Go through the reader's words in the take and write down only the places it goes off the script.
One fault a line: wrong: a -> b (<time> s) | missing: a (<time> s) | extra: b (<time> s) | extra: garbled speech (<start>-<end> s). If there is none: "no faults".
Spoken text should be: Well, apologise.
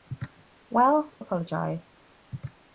no faults